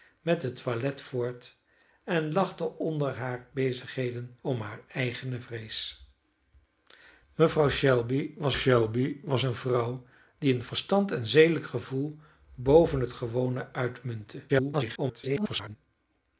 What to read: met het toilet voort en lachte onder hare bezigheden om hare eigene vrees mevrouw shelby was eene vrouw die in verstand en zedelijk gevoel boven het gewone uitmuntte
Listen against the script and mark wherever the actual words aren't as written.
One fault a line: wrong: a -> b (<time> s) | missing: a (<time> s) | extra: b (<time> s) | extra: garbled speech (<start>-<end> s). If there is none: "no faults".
extra: shelby was (8.5 s)
extra: garbled speech (14.5-15.8 s)